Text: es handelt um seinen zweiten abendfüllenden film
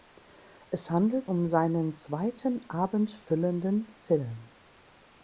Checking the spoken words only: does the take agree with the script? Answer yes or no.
yes